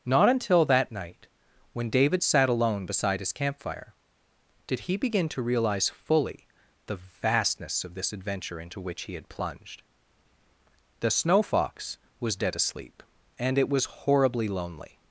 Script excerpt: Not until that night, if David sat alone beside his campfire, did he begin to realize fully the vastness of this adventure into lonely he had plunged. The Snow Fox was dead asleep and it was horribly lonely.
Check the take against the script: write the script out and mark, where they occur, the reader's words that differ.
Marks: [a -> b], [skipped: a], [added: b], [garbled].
Not until that night, [if -> when] David sat alone beside his campfire, did he begin to realize fully the vastness of this adventure into [lonely -> which] he had plunged. The Snow Fox was dead asleep and it was horribly lonely.